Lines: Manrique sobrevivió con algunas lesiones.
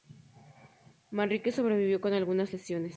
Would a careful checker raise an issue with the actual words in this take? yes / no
no